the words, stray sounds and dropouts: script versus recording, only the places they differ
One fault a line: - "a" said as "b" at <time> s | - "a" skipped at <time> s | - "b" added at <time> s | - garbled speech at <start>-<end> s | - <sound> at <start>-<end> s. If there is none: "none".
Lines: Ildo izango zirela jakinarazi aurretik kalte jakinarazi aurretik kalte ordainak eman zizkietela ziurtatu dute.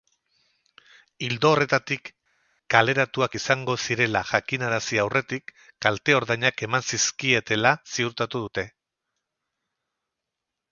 - "horretatik kaleratuak" added at 1.5 s
- "jakinarazi aurretik kalte" skipped at 6.2 s